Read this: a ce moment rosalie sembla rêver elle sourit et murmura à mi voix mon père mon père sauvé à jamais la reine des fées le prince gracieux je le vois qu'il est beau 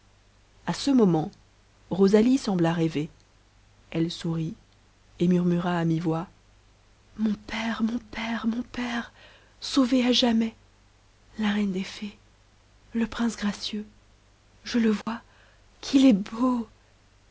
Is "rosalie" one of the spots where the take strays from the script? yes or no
no